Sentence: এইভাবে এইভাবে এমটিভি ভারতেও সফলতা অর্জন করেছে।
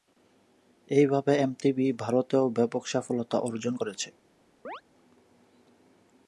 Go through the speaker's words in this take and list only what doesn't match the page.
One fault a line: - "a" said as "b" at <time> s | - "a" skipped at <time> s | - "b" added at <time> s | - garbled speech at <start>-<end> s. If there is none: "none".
- "এইভাবে" skipped at 1.3 s
- "ব্যাপক" added at 2.5 s